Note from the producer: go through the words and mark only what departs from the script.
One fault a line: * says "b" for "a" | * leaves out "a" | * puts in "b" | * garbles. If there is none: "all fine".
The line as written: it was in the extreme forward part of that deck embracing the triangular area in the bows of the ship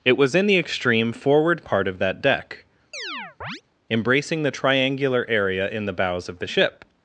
all fine